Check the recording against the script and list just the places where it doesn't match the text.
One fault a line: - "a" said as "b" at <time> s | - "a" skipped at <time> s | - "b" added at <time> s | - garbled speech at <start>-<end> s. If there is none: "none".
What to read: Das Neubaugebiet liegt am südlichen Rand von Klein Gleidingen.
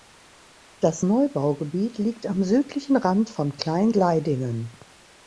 none